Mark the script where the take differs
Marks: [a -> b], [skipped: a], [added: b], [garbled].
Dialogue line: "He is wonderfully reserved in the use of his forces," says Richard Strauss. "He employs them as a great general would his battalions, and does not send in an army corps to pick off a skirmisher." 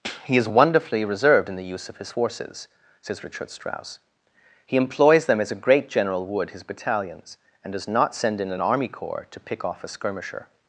"He is wonderfully reserved in the use of his forces," says Richard Strauss. "He employs them as a great general would his battalions, and does not send in an army corps to pick off a skirmisher."